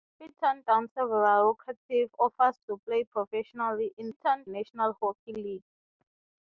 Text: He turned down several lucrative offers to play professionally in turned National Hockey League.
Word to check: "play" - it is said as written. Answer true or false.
true